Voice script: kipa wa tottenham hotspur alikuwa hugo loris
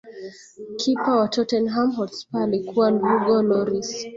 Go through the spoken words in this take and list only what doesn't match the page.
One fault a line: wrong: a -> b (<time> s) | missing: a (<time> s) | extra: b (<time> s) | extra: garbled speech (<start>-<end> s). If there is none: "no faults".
no faults